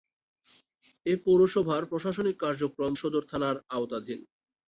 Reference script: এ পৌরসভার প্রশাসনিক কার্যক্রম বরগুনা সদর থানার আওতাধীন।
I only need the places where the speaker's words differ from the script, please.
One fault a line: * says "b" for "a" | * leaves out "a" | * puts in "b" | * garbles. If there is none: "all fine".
* leaves out "বরগুনা"